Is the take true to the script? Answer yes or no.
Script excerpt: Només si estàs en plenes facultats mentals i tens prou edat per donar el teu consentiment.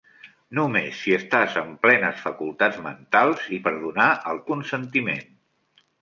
no